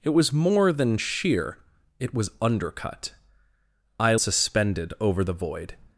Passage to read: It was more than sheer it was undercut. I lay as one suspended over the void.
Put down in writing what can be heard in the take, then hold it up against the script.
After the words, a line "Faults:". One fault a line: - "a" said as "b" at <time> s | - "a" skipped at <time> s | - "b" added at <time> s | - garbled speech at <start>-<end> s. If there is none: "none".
It was more than sheer it was undercut. I suspended over the void.
Faults:
- "lay as one" skipped at 4.1 s